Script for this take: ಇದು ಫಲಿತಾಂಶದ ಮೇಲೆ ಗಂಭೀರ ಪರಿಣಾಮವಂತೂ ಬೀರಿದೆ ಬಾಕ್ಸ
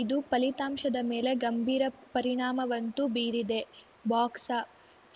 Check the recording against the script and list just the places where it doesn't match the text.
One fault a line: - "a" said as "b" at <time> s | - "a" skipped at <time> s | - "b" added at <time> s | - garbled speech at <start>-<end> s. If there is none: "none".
none